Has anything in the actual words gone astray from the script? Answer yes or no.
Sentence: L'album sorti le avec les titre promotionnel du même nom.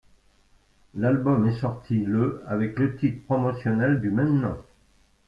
yes